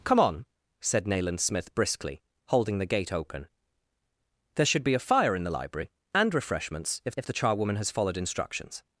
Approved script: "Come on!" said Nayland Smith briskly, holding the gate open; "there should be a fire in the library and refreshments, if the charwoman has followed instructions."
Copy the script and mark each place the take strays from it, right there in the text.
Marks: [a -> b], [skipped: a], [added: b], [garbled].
"Come on!" said Nayland Smith briskly, holding the gate open; "there should be a fire in the library and refreshments, if [added: if] the charwoman has followed instructions."